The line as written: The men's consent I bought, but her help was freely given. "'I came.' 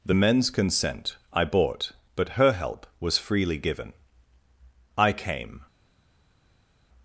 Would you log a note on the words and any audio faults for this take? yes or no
no